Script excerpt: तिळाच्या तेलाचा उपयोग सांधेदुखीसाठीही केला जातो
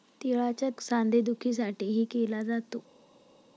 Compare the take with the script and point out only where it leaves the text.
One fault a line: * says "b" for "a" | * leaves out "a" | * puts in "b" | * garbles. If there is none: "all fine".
* leaves out "तेलाचा उपयोग"